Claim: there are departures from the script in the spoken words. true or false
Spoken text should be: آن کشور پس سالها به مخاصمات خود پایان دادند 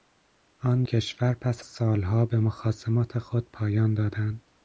false